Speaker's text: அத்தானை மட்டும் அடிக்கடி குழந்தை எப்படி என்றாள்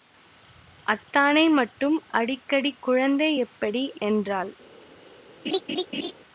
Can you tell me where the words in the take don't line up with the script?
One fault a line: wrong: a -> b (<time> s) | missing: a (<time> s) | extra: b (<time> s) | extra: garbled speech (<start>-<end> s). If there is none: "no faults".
no faults